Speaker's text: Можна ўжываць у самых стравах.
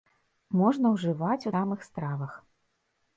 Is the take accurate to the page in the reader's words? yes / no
yes